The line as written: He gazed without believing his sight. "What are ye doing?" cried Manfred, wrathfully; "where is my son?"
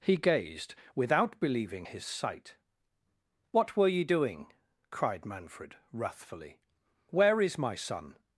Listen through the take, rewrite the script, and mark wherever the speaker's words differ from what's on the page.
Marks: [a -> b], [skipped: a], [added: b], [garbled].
He gazed without believing his sight. "What [are -> were] ye doing?" cried Manfred, wrathfully; "where is my son?"